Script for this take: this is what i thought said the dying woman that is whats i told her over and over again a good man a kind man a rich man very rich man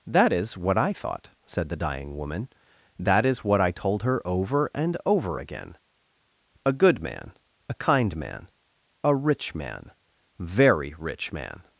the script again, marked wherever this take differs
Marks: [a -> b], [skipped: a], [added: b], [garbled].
[this -> that] is what i thought said the dying woman that is [whats -> what] i told her over and over again a good man a kind man a rich man very rich man